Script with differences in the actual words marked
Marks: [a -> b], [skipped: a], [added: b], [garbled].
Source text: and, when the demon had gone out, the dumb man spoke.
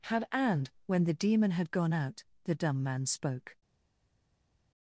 [added: had] and, when the demon had gone out, the dumb man spoke.